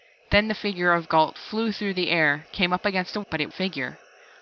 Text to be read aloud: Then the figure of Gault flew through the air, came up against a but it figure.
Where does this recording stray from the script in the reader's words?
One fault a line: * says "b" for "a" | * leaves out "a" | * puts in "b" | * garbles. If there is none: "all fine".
all fine